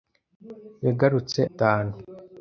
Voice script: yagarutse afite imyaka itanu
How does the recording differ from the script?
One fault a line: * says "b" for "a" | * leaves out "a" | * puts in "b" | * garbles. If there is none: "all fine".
* leaves out "afite imyaka"